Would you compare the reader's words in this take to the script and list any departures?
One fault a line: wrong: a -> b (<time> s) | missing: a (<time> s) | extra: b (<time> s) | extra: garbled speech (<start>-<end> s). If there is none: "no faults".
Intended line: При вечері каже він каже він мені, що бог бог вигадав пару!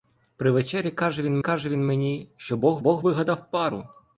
no faults